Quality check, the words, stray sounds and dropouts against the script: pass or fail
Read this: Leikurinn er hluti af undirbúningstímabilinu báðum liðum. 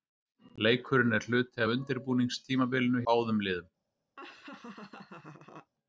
fail